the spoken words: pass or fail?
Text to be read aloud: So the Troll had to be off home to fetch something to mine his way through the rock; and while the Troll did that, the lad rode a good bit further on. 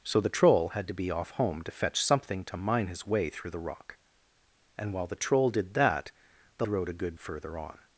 fail